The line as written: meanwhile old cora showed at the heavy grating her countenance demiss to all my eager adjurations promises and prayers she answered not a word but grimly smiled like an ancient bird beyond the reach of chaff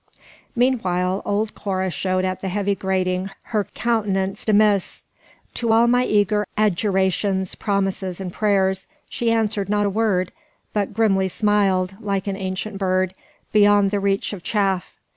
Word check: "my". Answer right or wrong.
right